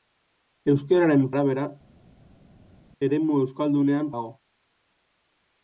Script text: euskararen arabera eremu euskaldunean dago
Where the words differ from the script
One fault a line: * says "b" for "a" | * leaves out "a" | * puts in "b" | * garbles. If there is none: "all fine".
all fine